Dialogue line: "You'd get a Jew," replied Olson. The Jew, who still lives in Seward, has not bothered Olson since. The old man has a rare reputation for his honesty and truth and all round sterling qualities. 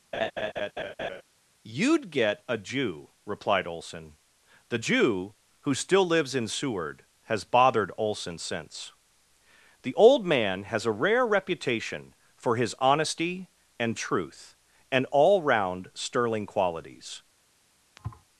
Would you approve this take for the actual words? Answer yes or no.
no